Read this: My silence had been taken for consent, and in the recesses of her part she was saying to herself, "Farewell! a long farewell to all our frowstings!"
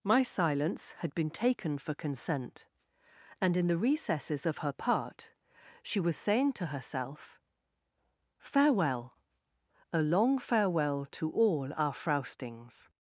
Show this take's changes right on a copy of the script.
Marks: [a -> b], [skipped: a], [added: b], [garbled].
My silence had been taken for consent, and in the recesses of her part she was saying to herself, "Farewell! a long farewell to all our frowstings!"